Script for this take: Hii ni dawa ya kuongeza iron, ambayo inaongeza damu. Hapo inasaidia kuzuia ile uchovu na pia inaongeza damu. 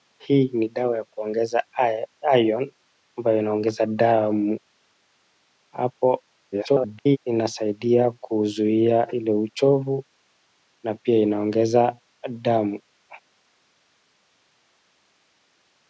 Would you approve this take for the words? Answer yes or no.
no